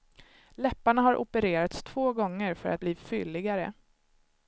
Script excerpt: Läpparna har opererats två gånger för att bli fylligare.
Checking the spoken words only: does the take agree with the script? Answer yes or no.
yes